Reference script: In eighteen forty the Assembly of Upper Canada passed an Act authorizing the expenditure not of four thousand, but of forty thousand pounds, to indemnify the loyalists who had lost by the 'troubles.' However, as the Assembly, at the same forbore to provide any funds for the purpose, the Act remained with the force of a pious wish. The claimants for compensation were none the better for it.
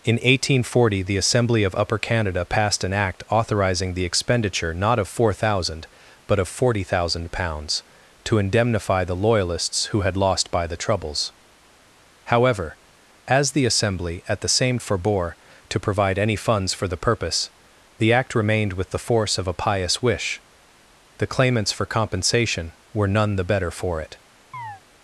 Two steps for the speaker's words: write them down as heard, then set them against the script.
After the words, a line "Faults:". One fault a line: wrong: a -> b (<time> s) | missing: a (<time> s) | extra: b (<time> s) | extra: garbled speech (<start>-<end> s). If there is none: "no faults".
In eighteen forty the Assembly of Upper Canada passed an Act authorizing the expenditure not of four thousand, but of forty thousand pounds, to indemnify the loyalists who had lost by the 'troubles.' However, as the Assembly, at the same forbore to provide any funds for the purpose, the Act remained with the force of a pious wish. The claimants for compensation were none the better for it.
Faults:
no faults